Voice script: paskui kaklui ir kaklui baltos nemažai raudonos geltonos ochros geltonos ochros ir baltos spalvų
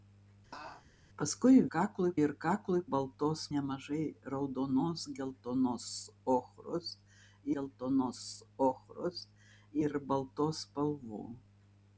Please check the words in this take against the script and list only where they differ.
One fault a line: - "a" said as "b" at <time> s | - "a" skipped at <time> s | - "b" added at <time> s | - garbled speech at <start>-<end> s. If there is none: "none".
none